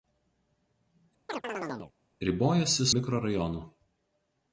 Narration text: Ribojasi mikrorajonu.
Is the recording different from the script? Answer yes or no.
no